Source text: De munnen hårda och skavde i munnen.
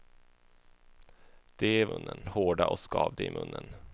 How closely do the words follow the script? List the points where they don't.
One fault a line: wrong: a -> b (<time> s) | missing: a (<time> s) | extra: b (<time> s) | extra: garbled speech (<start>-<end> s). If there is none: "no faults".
no faults